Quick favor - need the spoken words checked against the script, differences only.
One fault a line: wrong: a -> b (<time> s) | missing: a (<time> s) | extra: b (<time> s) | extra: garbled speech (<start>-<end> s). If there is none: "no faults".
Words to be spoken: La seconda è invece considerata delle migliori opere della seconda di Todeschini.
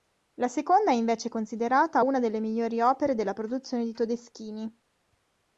extra: una (2.0 s)
wrong: seconda -> produzione (3.3 s)